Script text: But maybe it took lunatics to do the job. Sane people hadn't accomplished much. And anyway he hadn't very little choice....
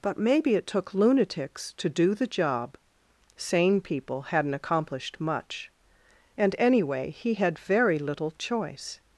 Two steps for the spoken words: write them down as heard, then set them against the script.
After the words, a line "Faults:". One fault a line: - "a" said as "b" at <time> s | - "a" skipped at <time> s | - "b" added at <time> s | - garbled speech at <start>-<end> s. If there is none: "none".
But maybe it took lunatics to do the job. Sane people hadn't accomplished much. And anyway he had very little choice....
Faults:
- "hadn't" said as "had" at 7.3 s